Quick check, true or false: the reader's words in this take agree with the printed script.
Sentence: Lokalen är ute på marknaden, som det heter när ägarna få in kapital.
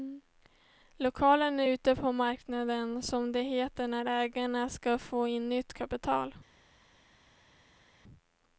false